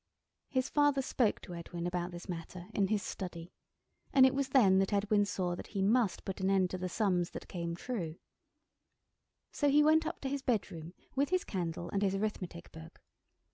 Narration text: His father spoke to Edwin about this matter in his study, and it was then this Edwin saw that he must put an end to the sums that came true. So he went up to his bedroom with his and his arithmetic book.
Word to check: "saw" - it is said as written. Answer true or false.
true